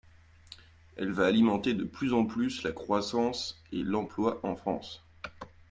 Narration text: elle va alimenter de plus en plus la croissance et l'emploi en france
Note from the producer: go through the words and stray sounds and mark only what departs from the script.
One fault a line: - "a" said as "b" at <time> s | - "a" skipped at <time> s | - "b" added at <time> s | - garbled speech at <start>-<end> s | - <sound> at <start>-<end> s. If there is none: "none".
none